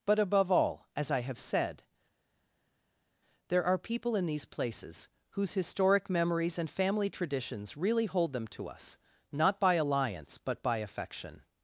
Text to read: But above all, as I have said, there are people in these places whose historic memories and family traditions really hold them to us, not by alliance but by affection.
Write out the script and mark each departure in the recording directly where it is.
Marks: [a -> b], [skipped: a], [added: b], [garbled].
But above all, as I have said, there are people in these places whose historic memories and family traditions really hold them to us, not by alliance but by affection.